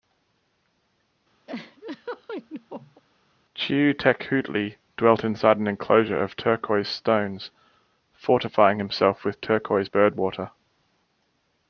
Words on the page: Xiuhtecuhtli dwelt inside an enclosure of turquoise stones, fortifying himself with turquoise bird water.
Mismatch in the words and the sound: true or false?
true